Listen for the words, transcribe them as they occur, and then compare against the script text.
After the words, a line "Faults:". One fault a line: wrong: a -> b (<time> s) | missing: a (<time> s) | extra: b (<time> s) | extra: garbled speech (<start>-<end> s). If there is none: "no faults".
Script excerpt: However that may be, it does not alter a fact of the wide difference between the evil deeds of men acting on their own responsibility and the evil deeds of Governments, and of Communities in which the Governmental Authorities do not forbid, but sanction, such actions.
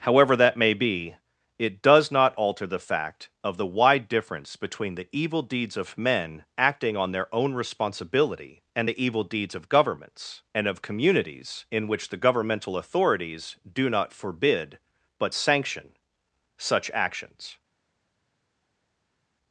However that may be, it does not alter the fact of the wide difference between the evil deeds of men acting on their own responsibility and the evil deeds of Governments, and of Communities in which the Governmental Authorities do not forbid, but sanction, such actions.
Faults:
wrong: a -> the (2.6 s)